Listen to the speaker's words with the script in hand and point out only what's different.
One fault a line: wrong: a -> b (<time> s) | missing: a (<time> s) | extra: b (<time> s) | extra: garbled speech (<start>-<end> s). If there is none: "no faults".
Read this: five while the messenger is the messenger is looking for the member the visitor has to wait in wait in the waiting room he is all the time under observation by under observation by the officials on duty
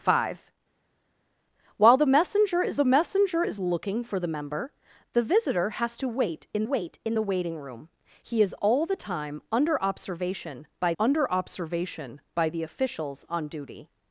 no faults